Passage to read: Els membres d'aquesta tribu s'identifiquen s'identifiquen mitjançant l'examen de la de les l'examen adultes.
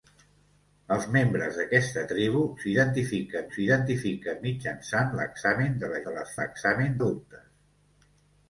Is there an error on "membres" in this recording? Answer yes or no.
no